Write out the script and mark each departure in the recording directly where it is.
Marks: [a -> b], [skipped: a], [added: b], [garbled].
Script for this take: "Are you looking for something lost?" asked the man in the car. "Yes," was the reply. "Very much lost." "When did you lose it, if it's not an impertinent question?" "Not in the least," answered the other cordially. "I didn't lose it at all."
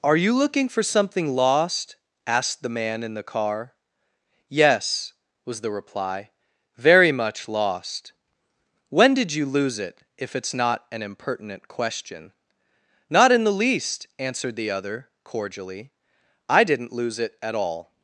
"Are you looking for something lost?" asked the man in the car. "Yes," was the reply. "Very much lost." "When did you lose it, if it's not an impertinent question?" "Not in the least," answered the other cordially. "I didn't lose it at all."